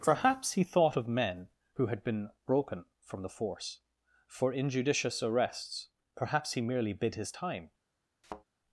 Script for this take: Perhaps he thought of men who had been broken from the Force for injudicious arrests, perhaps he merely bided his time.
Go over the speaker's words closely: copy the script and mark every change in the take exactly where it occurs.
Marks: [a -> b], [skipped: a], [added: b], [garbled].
Perhaps he thought of men who had been broken from the Force for injudicious arrests, perhaps he merely [bided -> bid] his time.